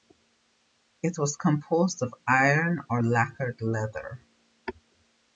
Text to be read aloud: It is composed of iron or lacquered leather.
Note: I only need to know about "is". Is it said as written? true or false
false